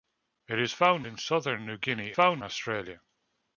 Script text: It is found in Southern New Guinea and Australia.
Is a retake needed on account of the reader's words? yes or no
yes